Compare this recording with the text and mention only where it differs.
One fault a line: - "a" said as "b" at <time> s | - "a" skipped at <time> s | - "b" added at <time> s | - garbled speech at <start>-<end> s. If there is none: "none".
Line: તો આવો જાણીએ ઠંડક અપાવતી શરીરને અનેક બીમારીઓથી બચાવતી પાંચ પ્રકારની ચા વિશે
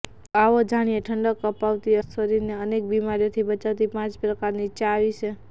none